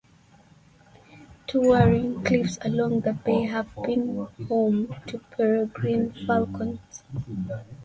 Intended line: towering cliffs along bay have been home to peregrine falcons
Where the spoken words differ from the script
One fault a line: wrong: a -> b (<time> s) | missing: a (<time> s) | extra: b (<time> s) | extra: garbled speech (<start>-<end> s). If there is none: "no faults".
extra: the (3.0 s)